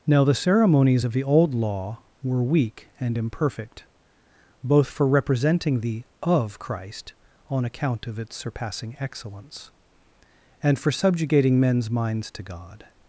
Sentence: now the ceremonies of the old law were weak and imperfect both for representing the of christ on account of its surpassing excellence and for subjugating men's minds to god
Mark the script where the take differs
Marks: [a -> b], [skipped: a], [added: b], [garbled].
now the ceremonies of the old law were weak and imperfect both for representing the of christ on account of its surpassing excellence and for subjugating men's minds to god